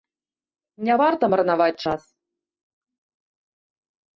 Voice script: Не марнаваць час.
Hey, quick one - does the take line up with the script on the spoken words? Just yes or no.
no